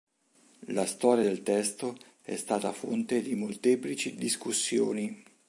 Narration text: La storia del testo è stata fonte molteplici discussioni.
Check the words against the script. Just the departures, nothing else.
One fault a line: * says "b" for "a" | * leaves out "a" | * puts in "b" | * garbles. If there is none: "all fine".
* puts in "di"